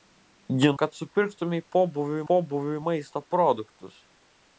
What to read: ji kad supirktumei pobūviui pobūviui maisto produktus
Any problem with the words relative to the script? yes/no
no